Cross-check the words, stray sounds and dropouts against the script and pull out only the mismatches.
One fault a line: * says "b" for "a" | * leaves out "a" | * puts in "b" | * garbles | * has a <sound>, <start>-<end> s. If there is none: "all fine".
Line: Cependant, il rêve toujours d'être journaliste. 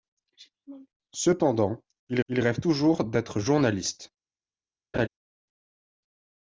* puts in "il"
* has a laugh, 4.9-5.1 s